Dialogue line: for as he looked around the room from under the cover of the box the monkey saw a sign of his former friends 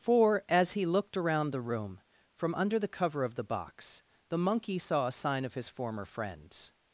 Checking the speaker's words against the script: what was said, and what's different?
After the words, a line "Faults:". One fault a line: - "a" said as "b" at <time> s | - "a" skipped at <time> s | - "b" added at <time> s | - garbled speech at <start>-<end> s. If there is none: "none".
for as he looked around the room from under the cover of the box the monkey saw a sign of his former friends
Faults:
none